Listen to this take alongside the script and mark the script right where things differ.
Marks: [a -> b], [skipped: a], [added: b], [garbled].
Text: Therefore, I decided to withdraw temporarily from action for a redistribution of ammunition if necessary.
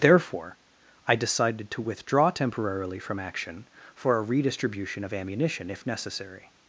Therefore, I decided to withdraw temporarily from action for a redistribution of ammunition if necessary.